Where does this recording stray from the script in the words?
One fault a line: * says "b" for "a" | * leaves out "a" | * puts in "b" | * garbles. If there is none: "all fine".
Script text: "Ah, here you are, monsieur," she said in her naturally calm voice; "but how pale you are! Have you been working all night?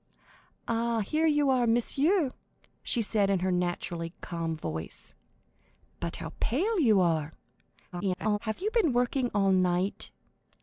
* garbles